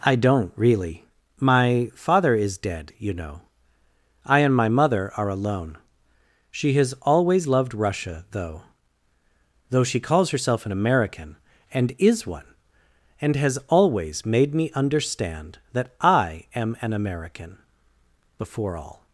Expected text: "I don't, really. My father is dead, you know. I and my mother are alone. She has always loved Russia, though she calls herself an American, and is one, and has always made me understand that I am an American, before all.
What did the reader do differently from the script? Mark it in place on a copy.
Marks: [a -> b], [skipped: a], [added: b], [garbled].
"I don't, really. My father is dead, you know. I and my mother are alone. She has always loved Russia, though [added: though] she calls herself an American, and is one, and has always made me understand that I am an American, before all.